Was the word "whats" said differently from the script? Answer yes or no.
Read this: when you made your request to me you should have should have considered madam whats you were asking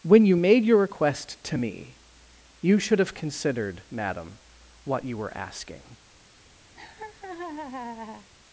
yes